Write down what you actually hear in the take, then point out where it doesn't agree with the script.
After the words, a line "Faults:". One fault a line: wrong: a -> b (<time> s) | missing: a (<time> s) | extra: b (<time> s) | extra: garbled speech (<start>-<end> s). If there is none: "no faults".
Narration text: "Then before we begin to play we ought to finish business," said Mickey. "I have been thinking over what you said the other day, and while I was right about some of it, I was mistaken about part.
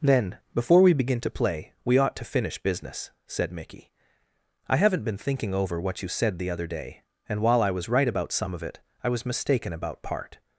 "Then before we begin to play we ought to finish business," said Mickey. "I haven't been thinking over what you said the other day, and while I was right about some of it, I was mistaken about part.
Faults:
wrong: have -> haven't (4.8 s)